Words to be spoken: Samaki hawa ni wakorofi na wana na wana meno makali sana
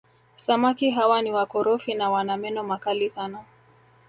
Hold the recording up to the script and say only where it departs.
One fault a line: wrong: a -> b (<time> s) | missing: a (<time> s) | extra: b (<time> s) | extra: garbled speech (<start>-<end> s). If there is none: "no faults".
missing: na wana (2.4 s)